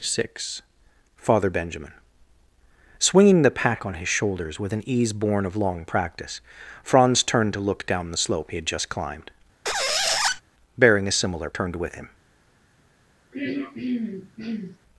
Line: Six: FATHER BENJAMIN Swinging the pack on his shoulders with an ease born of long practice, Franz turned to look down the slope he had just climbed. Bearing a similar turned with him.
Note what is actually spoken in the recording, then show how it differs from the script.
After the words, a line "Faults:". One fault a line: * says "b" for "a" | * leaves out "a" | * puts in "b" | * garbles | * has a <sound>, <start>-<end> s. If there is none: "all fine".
Six: FATHER BENJAMIN Swinging the pack on his shoulders with an ease born of long practice, Franz turned to look down the slope he had just climbed. Bearing a similar turned with him.
Faults:
* has a squeak, 9.6-10.4 s
* has a throat clearing, 13.3-14.8 s